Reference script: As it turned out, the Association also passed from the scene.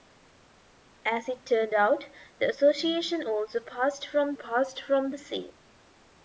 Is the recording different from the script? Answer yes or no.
yes